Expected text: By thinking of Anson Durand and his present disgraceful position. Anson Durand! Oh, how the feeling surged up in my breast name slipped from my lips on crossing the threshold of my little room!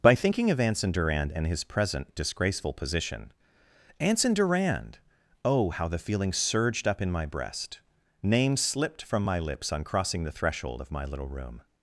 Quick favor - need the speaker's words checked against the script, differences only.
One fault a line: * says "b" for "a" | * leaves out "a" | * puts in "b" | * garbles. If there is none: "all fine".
all fine